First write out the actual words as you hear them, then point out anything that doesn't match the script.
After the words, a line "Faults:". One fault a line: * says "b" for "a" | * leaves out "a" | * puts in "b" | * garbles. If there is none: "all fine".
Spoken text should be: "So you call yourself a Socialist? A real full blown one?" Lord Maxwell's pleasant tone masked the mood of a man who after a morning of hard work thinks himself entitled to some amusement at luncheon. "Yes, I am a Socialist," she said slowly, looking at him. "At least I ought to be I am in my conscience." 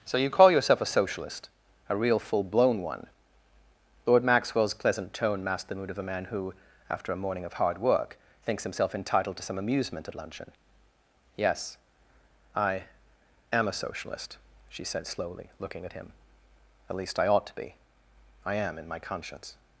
"So you call yourself a Socialist? A real full blown one?" Lord Maxwell's pleasant tone masked the mood of a man who after a morning of hard work thinks himself entitled to some amusement at luncheon. "Yes, I am a Socialist," she said slowly, looking at him. "At least I ought to be I am in my conscience."
Faults:
all fine